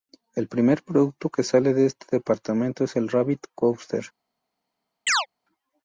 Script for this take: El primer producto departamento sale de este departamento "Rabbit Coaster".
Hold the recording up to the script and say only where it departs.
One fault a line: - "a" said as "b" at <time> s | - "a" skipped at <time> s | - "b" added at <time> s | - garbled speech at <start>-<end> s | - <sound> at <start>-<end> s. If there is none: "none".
- "departamento" said as "que" at 1.3 s
- "es el" added at 2.9 s
- chirp at 5.1-5.3 s